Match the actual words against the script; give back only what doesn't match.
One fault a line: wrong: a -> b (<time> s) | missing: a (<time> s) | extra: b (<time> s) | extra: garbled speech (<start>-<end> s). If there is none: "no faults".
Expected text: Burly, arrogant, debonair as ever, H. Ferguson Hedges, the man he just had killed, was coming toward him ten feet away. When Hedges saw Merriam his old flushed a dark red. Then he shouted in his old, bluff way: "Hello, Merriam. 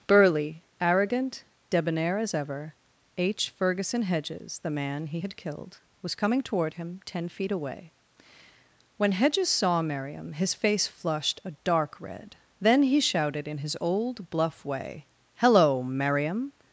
missing: just (5.2 s)
wrong: old -> face (10.5 s)